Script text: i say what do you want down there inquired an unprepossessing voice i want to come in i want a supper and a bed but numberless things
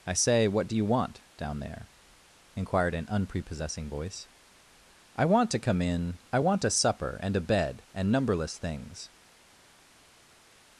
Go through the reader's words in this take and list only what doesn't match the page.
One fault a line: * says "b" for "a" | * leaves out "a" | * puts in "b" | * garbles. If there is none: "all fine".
* says "and" for "but"